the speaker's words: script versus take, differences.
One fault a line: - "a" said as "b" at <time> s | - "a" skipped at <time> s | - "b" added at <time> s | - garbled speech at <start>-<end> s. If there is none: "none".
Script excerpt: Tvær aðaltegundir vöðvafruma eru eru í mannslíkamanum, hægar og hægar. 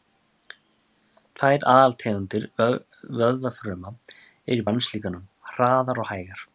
- "eru" skipped at 4.7 s
- "hægar" said as "hraðar" at 5.5 s